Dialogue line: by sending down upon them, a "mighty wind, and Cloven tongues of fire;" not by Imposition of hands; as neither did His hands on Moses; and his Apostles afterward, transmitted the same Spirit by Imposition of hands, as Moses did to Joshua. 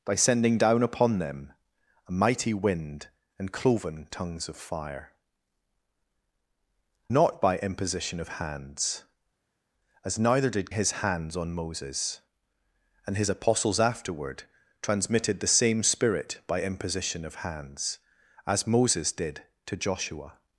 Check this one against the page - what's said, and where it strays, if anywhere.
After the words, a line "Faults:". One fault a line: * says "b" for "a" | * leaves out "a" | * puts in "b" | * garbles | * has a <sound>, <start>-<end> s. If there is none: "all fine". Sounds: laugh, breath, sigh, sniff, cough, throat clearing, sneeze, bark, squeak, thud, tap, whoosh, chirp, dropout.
by sending down upon them, a "mighty wind, and Cloven tongues of fire;" not by Imposition of hands; as neither did His hands on Moses; and his Apostles afterward, transmitted the same Spirit by Imposition of hands, as Moses did to Joshua.
Faults:
all fine